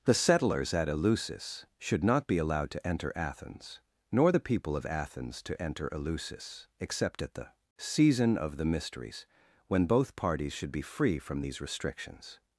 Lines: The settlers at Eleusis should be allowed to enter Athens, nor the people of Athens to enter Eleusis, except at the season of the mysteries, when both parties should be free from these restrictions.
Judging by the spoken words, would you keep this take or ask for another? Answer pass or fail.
fail